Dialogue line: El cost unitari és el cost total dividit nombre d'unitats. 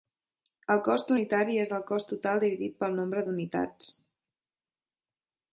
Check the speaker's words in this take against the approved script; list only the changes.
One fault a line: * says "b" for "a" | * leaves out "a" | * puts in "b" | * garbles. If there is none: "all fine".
* puts in "pel"